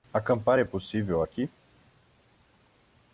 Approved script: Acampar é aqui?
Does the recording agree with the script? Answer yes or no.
no